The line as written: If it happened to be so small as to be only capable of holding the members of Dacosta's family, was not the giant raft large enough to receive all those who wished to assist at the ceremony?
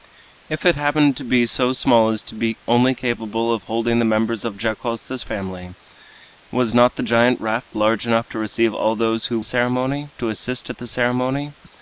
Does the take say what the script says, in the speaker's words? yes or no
no